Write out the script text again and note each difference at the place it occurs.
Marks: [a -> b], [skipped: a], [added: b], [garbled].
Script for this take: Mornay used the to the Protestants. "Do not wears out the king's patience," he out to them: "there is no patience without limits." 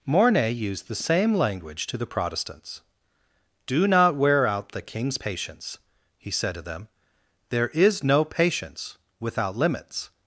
Mornay used the [added: same language] to the Protestants. "Do not [wears -> wear] out the king's patience," he [out -> said] to them: "there is no patience without limits."